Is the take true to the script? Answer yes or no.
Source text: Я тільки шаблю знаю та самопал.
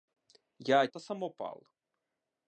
no